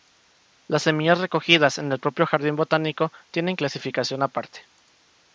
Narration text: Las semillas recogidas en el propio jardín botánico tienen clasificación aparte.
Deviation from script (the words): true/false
false